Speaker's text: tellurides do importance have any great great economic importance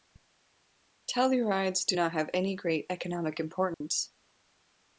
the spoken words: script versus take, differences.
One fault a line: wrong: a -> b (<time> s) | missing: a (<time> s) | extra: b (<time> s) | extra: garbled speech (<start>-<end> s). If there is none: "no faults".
wrong: importance -> not (1.9 s)
missing: great (2.8 s)